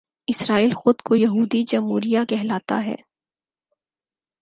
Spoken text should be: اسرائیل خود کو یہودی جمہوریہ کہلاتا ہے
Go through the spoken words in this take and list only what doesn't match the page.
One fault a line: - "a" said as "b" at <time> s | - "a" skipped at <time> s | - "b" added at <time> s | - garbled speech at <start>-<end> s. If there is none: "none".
none